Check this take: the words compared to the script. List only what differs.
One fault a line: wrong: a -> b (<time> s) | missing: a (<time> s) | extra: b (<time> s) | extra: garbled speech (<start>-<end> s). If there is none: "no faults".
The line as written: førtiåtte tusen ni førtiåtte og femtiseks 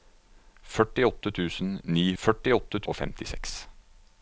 no faults